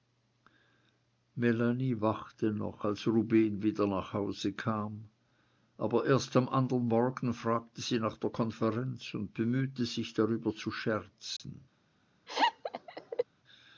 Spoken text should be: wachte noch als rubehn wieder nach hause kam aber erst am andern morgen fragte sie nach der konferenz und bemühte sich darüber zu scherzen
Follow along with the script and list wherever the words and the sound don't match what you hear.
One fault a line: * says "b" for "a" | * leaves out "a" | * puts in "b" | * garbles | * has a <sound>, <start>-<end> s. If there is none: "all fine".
* has a dropout, 11.4-11.4 s
* has a laugh, 12.3-13.2 s